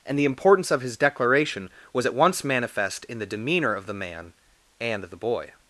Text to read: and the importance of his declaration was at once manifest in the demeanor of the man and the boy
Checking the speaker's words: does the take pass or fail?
pass